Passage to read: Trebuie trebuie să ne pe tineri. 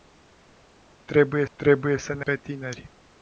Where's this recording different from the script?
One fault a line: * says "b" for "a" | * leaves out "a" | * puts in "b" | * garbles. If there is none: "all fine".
all fine